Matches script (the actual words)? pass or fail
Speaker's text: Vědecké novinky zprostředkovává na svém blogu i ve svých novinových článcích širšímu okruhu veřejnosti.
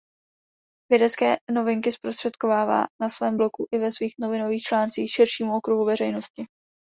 pass